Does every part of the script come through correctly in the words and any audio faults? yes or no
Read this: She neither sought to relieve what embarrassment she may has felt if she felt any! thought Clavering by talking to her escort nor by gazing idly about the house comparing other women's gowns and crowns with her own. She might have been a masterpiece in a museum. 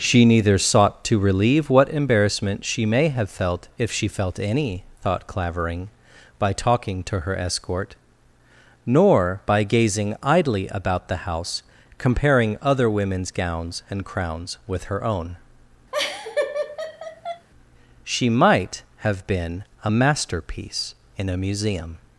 no